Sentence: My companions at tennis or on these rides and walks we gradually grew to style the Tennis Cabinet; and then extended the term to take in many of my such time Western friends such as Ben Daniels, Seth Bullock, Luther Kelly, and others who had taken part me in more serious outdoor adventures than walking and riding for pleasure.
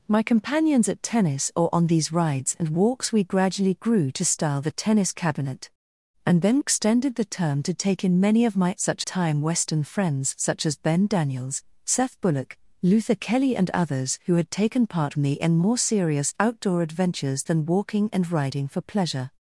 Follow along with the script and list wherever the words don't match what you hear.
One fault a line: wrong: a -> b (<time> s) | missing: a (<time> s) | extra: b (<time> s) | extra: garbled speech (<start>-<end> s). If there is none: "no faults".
no faults